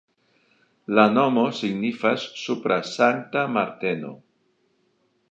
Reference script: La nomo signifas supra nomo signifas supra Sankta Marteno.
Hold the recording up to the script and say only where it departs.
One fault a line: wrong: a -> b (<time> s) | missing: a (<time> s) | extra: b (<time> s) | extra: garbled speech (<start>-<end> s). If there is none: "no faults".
missing: nomo signifas supra (2.8 s)